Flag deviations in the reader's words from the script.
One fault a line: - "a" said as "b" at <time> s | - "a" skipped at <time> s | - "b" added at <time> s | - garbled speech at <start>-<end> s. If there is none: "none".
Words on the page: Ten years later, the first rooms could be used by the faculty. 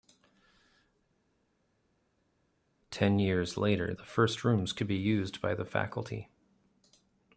none